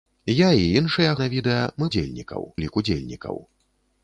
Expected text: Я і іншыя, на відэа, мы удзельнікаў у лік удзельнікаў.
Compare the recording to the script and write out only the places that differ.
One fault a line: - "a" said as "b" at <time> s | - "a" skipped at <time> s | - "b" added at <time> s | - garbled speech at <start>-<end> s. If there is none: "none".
none